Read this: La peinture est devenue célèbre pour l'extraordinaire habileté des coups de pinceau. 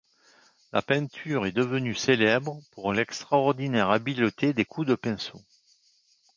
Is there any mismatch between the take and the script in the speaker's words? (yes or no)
no